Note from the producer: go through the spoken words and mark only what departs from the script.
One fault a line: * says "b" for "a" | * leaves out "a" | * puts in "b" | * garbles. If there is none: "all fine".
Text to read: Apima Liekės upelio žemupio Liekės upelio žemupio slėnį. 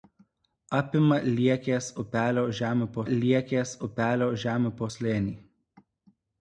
all fine